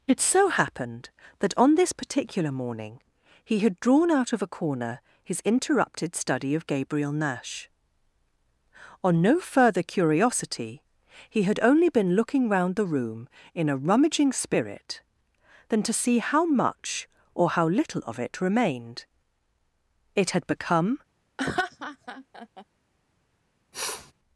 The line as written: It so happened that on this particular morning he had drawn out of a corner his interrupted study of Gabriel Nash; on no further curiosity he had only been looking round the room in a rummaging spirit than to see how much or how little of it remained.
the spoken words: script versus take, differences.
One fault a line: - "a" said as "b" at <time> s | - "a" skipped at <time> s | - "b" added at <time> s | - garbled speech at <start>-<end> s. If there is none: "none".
- "It had become" added at 20.1 s